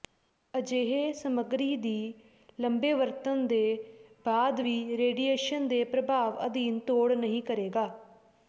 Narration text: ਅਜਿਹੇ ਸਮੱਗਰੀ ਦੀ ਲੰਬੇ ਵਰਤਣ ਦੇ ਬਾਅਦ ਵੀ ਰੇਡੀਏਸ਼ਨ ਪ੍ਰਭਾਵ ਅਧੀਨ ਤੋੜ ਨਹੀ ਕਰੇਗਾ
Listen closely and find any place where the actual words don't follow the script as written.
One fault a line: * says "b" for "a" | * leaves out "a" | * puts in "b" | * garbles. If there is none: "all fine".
* puts in "ਦੇ"